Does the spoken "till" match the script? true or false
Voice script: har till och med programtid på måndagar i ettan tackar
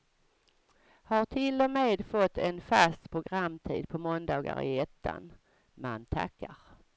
true